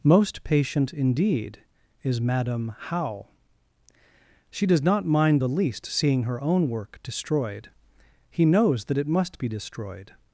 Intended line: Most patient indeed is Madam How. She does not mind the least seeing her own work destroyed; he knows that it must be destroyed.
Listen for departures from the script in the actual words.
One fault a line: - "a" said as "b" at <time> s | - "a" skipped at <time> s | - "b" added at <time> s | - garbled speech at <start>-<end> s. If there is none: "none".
none